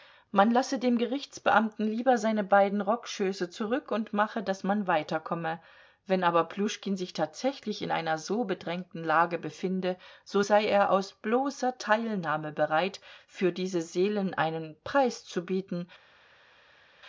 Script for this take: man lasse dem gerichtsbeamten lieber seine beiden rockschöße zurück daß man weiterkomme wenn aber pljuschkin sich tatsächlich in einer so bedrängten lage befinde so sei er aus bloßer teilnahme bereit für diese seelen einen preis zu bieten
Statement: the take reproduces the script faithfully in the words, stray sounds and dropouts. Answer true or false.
false